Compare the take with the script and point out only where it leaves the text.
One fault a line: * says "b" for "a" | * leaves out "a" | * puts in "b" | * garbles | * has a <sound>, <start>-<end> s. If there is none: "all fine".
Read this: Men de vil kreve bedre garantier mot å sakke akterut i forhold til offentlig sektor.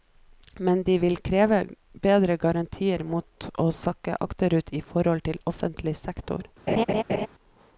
* has a laugh, 6.7-7.3 s